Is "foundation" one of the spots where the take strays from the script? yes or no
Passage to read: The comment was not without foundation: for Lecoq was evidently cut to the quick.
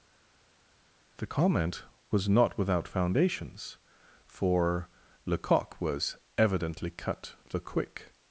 yes